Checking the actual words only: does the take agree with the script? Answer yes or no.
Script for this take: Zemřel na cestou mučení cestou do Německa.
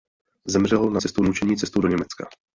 yes